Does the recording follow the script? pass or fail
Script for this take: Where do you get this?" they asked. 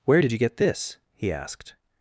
fail